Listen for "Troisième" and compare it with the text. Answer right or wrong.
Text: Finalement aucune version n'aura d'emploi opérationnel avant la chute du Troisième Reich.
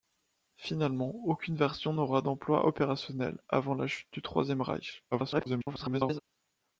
right